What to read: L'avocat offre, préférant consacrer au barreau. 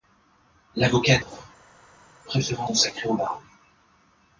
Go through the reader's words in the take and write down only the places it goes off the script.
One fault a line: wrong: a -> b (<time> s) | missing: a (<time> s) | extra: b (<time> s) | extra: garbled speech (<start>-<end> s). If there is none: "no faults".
no faults